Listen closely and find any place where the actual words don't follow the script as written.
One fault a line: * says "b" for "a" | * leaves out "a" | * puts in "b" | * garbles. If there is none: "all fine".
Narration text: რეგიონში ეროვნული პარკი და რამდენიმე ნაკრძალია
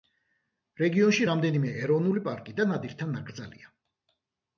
* puts in "რამდენიმე"
* says "ნადირთა" for "რამდენიმე"